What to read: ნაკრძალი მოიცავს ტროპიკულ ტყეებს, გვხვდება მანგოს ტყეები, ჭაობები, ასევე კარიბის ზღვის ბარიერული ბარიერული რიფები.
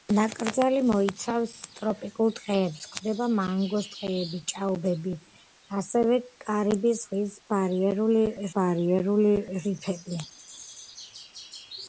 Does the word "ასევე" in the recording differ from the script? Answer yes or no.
no